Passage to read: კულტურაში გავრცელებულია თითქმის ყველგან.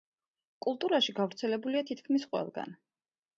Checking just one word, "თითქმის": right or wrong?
right